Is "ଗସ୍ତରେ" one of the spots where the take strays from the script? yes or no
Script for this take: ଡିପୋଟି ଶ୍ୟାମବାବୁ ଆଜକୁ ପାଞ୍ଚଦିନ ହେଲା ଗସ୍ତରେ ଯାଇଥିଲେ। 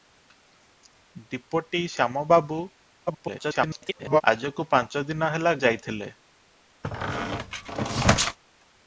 yes